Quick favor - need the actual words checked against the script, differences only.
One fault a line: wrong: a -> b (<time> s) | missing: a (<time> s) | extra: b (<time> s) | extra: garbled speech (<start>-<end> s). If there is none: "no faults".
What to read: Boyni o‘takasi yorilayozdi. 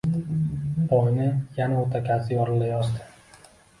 extra: yana (1.6 s)